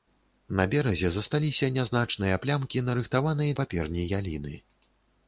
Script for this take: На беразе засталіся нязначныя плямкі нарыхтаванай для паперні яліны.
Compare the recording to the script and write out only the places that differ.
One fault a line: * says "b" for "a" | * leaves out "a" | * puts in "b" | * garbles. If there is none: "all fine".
* leaves out "для"